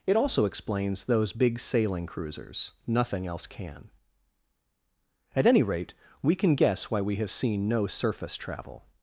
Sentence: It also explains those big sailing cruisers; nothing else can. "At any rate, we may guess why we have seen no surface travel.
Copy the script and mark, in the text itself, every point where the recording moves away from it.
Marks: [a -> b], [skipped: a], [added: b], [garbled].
It also explains those big sailing cruisers; nothing else can. "At any rate, we [may -> can] guess why we have seen no surface travel.